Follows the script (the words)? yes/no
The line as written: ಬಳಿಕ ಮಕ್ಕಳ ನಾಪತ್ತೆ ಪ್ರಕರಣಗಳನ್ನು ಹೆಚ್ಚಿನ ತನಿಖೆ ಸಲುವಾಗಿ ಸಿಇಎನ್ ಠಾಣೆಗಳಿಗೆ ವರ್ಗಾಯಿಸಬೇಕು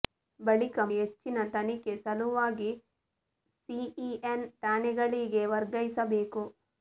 no